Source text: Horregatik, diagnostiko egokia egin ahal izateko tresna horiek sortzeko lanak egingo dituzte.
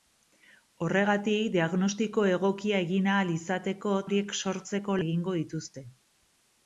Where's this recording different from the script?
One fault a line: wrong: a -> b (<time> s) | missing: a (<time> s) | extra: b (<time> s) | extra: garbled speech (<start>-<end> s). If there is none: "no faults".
missing: tresna (3.9 s)
missing: lanak (5.0 s)